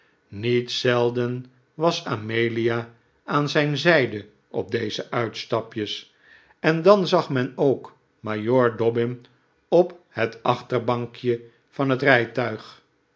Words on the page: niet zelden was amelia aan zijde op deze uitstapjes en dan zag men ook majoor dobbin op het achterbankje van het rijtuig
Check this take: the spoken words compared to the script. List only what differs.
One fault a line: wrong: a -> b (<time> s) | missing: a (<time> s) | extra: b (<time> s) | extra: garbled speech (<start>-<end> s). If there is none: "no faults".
extra: zijn (3.5 s)